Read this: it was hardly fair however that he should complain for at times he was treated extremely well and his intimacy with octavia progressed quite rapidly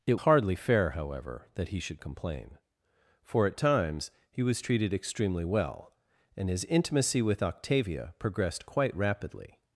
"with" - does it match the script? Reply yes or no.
yes